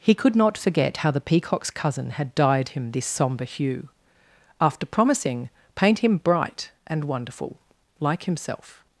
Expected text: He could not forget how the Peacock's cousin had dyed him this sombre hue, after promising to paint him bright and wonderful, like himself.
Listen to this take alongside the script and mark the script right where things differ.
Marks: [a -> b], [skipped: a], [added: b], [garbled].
He could not forget how the Peacock's cousin had dyed him this sombre hue, after promising [skipped: to] paint him bright and wonderful, like himself.